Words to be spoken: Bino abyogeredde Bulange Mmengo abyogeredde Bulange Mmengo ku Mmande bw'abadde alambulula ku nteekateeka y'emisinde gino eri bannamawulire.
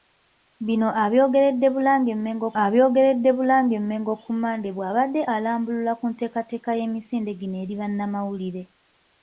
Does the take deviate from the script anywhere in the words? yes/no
no